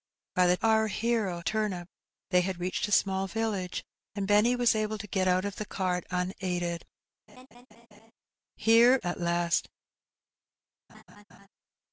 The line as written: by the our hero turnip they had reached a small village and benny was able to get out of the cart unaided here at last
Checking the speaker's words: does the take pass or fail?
pass